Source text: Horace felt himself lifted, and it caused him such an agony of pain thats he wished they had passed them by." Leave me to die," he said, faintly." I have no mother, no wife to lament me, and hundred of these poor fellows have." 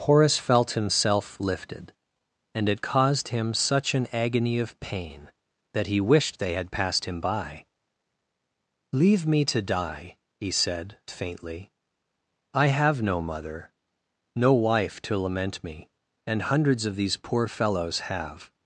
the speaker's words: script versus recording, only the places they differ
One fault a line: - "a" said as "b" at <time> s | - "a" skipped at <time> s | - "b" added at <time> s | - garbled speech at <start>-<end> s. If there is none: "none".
- "thats" said as "that" at 5.7 s
- "them" said as "him" at 7.0 s
- "hundred" said as "hundreds" at 16.4 s